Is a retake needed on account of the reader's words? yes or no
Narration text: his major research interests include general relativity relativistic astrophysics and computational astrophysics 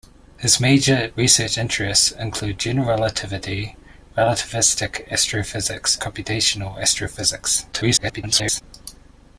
yes